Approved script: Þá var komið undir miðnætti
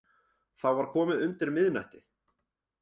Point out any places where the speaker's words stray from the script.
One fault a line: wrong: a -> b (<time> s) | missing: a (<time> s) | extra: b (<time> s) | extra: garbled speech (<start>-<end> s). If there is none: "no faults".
no faults